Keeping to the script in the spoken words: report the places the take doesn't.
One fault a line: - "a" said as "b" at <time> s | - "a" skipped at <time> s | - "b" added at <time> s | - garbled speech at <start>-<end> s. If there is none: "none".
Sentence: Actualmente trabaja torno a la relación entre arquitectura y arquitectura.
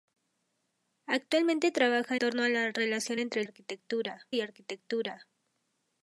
none